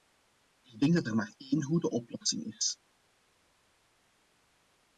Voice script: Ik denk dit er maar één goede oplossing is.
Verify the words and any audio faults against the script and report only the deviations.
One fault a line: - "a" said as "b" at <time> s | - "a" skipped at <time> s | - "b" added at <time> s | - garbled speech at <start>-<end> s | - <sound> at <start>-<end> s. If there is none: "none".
- "dit" said as "dat" at 0.9 s